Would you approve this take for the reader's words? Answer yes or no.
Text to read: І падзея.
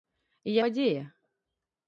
yes